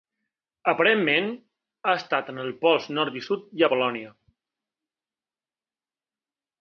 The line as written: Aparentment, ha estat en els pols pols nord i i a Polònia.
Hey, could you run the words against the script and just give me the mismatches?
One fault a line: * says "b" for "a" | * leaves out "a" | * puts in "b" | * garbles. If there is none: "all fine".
* leaves out "pols"
* puts in "sud"